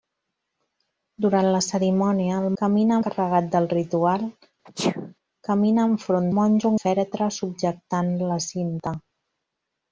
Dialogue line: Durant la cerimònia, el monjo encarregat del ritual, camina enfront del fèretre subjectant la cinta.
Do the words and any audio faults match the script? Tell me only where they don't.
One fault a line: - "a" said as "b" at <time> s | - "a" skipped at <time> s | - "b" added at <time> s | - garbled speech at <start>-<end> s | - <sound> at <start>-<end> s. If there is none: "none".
- "monjo" said as "camina" at 2.6 s
- sneeze at 4.7-5.2 s
- "del" said as "monjo" at 6.4 s